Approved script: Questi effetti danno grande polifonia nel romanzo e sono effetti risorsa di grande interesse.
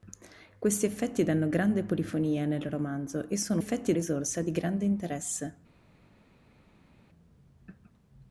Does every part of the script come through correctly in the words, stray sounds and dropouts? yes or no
yes